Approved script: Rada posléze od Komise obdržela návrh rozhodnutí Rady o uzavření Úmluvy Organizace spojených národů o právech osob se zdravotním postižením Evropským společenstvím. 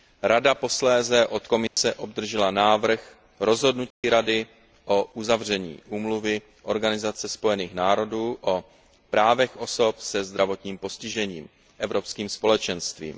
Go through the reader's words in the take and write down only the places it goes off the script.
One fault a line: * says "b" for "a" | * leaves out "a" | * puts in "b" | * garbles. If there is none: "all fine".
all fine